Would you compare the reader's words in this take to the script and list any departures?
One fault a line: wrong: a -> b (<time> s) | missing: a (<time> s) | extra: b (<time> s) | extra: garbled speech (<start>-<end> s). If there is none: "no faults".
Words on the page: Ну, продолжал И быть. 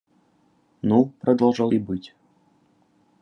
no faults